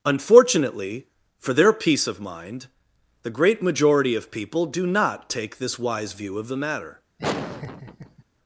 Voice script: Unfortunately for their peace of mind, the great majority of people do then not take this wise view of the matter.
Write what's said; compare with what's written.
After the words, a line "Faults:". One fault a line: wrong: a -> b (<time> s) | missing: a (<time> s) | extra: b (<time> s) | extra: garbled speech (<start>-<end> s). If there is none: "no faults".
Unfortunately for their peace of mind, the great majority of people do not take this wise view of the matter.
Faults:
missing: then (4.9 s)